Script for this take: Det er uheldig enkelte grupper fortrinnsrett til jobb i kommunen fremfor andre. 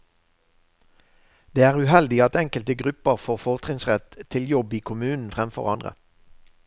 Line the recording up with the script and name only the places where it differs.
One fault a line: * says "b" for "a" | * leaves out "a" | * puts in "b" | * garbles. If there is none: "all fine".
* puts in "at"
* puts in "får"